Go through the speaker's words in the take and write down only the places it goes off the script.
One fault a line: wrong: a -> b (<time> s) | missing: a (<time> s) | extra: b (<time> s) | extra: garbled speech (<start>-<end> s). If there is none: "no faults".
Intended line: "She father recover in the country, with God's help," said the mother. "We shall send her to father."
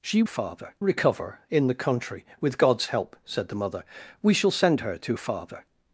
no faults